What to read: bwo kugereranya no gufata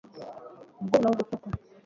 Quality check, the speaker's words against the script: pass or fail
fail